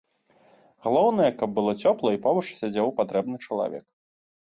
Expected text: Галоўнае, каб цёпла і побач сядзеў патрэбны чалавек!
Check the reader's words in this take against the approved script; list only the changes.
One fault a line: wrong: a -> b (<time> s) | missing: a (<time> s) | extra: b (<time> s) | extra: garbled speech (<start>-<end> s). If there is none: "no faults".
extra: было (1.6 s)